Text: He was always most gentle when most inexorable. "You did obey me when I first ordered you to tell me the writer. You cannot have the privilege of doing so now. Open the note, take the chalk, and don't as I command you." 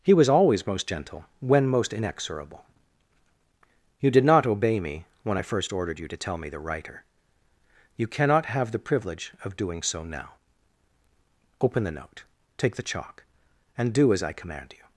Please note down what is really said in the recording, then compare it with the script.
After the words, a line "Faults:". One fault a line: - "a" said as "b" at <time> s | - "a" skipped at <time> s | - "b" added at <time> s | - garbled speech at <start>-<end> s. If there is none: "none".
He was always most gentle when most inexorable. "You did not obey me when I first ordered you to tell me the writer. You cannot have the privilege of doing so now. Open the note, take the chalk, and do as I command you."
Faults:
- "not" added at 4.2 s
- "don't" said as "do" at 13.9 s